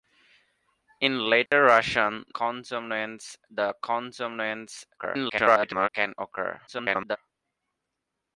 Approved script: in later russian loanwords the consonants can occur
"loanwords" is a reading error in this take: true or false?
true